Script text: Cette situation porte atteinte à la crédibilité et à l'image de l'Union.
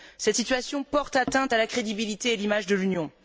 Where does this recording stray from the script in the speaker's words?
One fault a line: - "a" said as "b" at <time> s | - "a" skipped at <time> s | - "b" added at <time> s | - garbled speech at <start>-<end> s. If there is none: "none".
none